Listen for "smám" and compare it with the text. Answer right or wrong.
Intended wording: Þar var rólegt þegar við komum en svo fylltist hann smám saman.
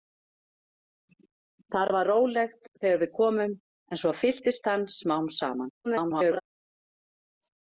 right